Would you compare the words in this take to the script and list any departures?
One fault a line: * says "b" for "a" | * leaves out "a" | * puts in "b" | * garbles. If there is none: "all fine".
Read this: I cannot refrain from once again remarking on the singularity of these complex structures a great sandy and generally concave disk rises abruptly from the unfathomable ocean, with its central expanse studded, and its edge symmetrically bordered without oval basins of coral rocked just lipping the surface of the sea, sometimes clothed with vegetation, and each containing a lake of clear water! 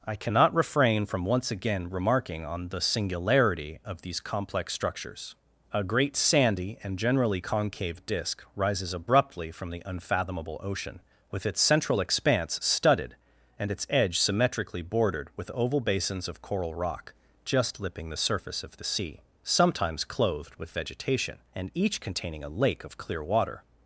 * says "with" for "without"
* says "rock" for "rocked"